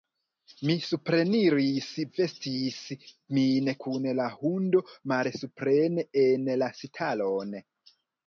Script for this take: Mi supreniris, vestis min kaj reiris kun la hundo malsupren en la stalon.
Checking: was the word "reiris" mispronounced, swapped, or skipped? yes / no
yes